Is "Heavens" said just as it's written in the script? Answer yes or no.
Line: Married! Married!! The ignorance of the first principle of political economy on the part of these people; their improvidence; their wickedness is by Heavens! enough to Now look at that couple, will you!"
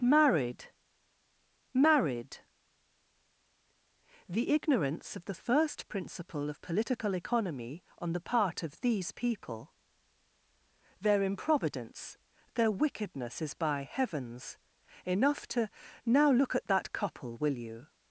yes